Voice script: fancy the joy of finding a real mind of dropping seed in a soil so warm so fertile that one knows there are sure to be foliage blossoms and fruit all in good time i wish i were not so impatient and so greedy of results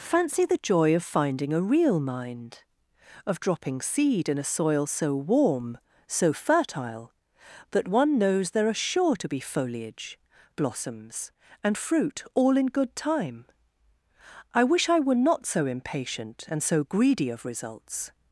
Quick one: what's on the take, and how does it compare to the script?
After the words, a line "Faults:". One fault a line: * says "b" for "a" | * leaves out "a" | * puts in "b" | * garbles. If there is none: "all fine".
fancy the joy of finding a real mind of dropping seed in a soil so warm so fertile that one knows there are sure to be foliage blossoms and fruit all in good time i wish i were not so impatient and so greedy of results
Faults:
all fine